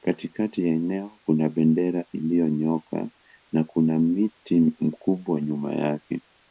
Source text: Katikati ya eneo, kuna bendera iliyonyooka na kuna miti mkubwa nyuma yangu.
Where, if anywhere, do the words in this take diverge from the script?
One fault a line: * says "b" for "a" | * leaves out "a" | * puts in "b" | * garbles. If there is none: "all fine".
* says "yake" for "yangu"